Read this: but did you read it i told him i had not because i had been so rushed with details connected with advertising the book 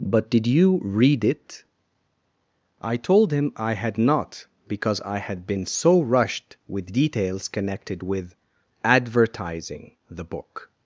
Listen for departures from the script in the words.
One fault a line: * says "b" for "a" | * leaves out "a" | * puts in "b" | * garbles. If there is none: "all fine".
all fine